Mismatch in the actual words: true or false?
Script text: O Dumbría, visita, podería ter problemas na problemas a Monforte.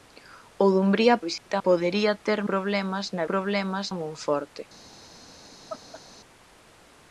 false